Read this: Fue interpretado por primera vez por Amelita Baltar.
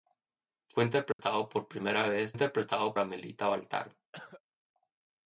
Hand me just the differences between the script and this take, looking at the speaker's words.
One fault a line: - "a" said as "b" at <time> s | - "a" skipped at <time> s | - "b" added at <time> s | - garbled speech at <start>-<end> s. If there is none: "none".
- "por" said as "interpretado" at 2.3 s